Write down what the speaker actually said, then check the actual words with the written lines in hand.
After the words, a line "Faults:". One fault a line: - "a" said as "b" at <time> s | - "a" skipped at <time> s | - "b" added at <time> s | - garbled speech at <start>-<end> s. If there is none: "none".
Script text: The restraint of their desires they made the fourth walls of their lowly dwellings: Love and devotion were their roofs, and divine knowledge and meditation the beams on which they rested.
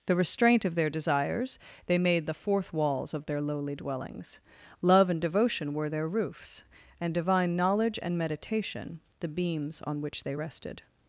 The restraint of their desires they made the fourth walls of their lowly dwellings: Love and devotion were their roofs, and divine knowledge and meditation the beams on which they rested.
Faults:
none